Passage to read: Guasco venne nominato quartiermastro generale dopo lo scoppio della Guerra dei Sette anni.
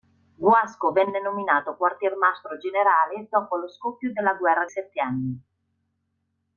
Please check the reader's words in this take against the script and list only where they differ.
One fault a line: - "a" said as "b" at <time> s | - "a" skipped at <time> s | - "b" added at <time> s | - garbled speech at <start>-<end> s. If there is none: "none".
- "dei" skipped at 4.7 s